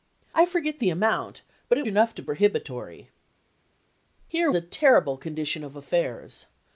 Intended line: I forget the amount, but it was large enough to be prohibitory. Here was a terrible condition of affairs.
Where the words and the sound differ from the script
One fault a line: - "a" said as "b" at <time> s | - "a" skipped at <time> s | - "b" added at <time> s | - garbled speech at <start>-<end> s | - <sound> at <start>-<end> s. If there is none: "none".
- "was large" skipped at 1.9 s
- "be" skipped at 2.2 s
- "was" skipped at 4.5 s